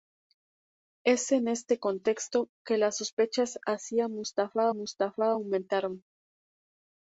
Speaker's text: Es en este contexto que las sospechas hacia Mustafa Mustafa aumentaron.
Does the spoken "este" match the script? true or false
true